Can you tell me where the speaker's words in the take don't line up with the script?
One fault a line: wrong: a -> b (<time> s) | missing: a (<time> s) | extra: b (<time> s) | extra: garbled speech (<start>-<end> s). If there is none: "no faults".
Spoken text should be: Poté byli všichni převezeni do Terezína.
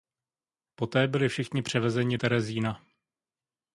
missing: do (2.2 s)